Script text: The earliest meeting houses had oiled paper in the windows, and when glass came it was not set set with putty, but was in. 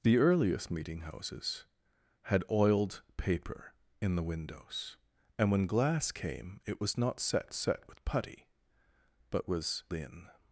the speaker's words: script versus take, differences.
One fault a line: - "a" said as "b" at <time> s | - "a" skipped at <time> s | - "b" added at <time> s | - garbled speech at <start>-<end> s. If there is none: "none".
none